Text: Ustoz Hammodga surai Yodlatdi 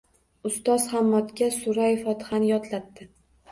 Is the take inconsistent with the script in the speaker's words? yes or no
yes